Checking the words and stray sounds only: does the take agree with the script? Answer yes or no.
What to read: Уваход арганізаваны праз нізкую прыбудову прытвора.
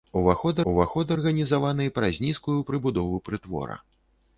no